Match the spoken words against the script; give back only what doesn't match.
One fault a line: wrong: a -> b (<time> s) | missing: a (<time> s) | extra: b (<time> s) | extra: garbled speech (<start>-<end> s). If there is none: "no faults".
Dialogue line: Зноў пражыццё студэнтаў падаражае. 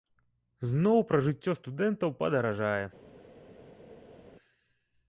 no faults